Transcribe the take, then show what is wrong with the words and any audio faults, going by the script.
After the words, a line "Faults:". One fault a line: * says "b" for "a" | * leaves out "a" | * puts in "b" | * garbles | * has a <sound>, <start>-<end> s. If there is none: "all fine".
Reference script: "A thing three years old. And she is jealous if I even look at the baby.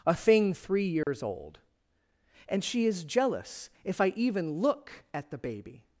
"A thing three years old. And she is jealous if I even look at the baby.
Faults:
* has a dropout, 1.0-1.1 s